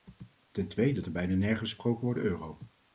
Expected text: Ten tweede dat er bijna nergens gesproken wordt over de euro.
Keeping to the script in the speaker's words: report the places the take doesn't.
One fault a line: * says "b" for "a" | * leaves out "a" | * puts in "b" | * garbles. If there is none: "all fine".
* leaves out "dat"
* leaves out "over"